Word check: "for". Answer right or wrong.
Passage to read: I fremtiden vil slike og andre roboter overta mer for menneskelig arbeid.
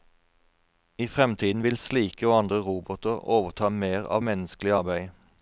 wrong